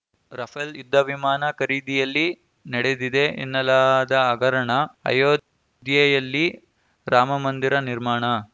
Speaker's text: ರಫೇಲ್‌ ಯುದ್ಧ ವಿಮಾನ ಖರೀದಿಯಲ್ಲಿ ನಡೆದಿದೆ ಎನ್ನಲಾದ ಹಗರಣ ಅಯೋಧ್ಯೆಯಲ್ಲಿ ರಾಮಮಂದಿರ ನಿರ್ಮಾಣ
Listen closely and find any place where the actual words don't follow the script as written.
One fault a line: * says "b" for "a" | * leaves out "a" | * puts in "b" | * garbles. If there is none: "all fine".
all fine